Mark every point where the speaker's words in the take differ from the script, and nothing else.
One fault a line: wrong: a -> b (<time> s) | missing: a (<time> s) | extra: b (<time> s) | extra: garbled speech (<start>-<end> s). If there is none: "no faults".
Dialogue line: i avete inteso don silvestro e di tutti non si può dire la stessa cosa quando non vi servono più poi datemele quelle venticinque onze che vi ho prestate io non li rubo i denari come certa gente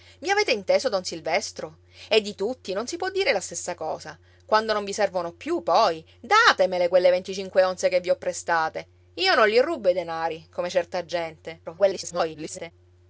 extra: garbled speech (11.6-12.7 s)